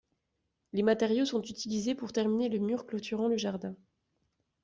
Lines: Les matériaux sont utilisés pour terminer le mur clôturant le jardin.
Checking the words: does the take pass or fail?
pass